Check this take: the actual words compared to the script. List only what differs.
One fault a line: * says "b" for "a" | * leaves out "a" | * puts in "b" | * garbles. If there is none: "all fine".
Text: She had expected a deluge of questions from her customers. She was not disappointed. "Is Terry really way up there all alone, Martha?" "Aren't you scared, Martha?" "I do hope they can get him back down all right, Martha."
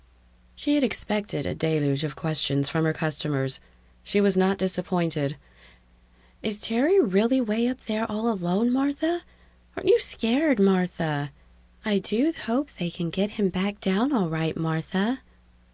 all fine